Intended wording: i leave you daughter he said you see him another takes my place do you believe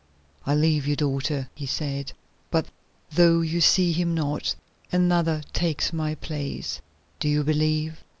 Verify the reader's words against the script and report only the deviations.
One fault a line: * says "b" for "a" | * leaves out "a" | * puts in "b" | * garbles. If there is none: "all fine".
* puts in "but though"
* puts in "not"